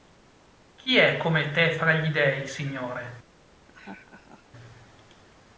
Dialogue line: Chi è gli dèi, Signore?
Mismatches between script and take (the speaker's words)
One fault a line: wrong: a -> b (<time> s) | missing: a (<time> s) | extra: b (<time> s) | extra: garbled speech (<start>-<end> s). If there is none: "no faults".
extra: come te fra (1.2 s)